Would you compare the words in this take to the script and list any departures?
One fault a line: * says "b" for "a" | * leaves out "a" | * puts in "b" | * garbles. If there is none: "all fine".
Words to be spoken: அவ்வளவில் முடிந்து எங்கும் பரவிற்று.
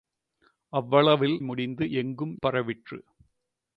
all fine